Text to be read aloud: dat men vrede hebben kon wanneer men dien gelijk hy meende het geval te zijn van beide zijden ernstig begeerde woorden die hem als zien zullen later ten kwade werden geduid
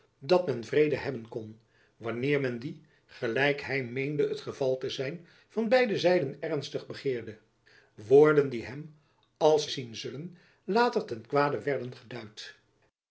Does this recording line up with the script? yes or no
yes